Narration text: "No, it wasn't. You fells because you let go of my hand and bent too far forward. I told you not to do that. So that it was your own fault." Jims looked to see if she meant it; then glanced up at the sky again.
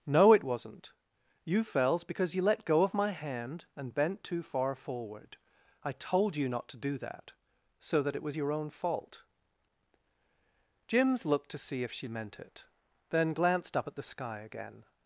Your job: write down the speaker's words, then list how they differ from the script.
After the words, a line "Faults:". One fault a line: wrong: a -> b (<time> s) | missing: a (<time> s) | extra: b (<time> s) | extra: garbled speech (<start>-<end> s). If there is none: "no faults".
"No, it wasn't. You fells because you let go of my hand and bent too far forward. I told you not to do that. So that it was your own fault." Jims looked to see if she meant it; then glanced up at the sky again.
Faults:
no faults